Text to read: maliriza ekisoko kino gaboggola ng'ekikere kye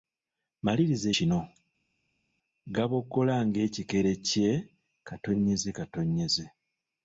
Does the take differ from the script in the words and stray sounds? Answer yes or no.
yes